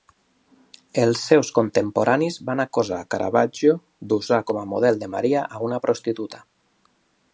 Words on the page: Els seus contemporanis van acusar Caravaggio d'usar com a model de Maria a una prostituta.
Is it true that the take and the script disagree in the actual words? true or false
false